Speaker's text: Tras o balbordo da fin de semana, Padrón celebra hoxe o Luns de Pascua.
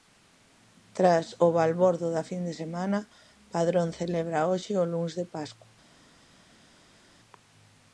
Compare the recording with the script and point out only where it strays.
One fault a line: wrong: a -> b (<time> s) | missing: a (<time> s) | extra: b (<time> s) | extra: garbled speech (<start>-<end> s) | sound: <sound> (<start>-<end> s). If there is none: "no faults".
no faults